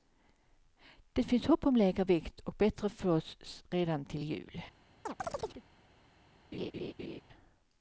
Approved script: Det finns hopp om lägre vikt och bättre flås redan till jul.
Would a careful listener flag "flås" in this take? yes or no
no